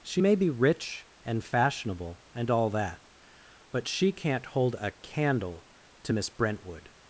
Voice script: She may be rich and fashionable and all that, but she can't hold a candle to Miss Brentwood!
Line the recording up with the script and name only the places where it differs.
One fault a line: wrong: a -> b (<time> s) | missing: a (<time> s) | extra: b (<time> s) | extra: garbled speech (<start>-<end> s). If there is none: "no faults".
no faults